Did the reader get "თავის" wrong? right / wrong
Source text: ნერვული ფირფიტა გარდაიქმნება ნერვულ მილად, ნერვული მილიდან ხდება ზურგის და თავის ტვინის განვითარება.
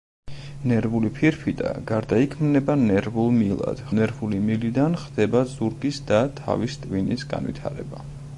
right